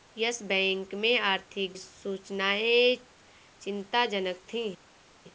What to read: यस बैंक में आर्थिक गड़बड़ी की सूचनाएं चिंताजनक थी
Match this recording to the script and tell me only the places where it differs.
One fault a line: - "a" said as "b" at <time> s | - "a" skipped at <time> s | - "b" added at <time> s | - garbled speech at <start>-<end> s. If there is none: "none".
- "गड़बड़ी की" skipped at 1.7 s